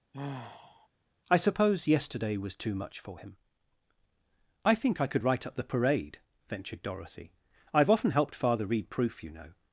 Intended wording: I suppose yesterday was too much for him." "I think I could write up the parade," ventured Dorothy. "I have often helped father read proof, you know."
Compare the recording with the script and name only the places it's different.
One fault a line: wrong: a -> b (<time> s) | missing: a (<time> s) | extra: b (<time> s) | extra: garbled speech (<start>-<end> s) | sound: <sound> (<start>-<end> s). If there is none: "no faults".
sound: sigh (0.1-0.9 s)